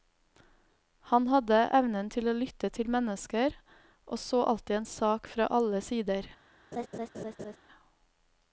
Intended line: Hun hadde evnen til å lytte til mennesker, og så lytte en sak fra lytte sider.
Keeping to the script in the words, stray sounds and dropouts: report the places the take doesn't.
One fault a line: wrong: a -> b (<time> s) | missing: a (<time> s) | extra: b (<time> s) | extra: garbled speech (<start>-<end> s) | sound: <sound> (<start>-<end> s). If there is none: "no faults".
wrong: Hun -> Han (1.1 s)
wrong: lytte -> alltid (4.5 s)
wrong: lytte -> alle (5.6 s)
sound: laugh (6.7-7.6 s)